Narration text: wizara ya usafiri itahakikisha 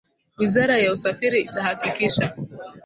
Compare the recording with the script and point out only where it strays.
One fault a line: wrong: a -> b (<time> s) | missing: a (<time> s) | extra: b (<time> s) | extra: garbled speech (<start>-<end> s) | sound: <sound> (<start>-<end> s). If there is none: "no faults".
no faults